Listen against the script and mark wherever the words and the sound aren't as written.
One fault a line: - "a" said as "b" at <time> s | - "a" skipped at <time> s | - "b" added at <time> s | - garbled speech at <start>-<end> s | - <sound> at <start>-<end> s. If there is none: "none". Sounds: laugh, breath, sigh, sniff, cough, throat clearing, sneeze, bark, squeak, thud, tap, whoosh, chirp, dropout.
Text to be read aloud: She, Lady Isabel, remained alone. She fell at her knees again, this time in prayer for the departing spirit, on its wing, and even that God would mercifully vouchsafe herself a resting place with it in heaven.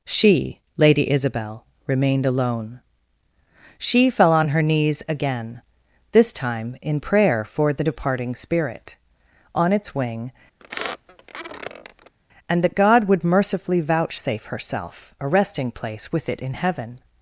- "at" said as "on" at 4.3 s
- squeak at 10.6-12.1 s
- "even" skipped at 12.6 s